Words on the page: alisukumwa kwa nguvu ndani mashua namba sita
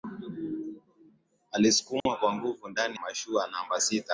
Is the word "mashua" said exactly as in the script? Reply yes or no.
yes